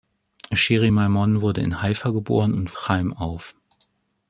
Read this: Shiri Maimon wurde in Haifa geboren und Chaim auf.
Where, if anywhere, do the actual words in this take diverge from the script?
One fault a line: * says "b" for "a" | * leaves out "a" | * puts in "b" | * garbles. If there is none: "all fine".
all fine